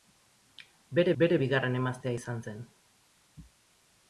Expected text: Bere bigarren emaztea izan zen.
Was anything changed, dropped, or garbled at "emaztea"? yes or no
no